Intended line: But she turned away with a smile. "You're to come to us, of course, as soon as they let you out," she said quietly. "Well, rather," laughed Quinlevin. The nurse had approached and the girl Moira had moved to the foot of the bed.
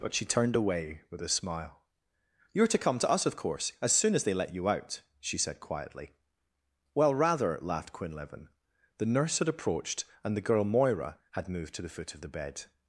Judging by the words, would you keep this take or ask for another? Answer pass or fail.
pass